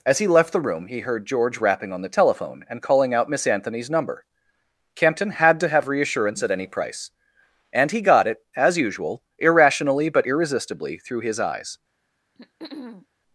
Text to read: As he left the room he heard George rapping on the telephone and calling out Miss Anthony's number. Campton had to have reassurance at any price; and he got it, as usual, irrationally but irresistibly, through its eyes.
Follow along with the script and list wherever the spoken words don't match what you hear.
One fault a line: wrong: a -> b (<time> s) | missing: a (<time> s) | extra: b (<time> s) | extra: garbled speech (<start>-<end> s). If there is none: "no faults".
wrong: its -> his (11.2 s)